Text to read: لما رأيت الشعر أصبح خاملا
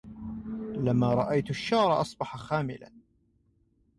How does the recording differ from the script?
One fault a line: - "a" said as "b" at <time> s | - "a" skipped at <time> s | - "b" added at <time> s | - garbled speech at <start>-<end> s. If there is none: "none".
none